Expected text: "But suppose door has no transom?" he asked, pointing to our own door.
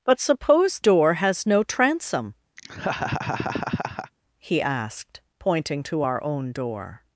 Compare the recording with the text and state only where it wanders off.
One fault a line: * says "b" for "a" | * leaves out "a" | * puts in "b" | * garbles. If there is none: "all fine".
all fine